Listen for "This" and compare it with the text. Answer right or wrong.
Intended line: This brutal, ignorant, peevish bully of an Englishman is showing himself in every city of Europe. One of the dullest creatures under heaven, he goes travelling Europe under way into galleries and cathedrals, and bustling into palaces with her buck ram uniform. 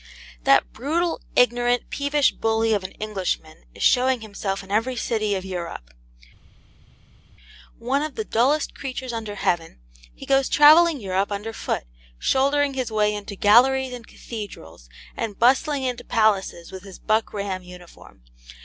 wrong